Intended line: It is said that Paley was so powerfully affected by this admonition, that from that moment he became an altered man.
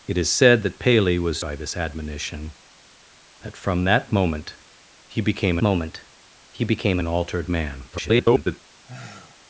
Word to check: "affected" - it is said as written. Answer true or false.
false